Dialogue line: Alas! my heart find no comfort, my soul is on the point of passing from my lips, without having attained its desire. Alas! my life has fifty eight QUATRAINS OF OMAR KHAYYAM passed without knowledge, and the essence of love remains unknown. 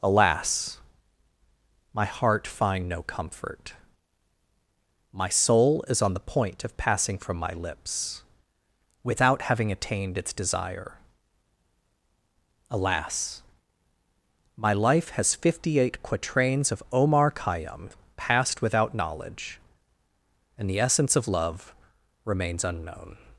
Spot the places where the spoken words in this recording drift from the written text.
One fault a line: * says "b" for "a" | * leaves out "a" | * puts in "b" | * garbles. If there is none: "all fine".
all fine